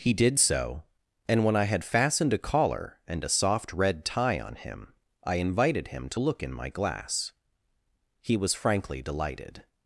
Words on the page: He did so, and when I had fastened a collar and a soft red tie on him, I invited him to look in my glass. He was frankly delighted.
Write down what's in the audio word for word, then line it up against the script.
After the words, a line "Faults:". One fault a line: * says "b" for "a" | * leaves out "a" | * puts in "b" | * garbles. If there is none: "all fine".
He did so, and when I had fastened a collar and a soft red tie on him, I invited him to look in my glass. He was frankly delighted.
Faults:
all fine